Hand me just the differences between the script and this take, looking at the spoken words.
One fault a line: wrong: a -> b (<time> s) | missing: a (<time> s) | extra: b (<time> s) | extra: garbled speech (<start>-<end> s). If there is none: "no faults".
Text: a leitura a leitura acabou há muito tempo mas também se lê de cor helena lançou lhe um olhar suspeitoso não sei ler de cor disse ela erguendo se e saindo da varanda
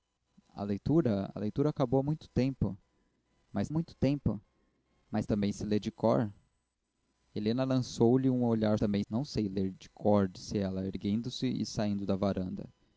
extra: muito tempo mas (3.7 s)
wrong: suspeitoso -> também (8.8 s)